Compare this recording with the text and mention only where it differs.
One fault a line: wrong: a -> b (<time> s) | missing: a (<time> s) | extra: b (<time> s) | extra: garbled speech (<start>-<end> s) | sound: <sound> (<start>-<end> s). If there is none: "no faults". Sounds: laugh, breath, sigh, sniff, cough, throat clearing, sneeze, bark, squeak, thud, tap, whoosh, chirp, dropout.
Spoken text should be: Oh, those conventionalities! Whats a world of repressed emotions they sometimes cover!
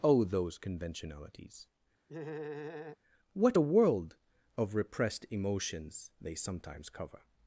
sound: laugh (2.1-3.0 s)
wrong: Whats -> What (3.3 s)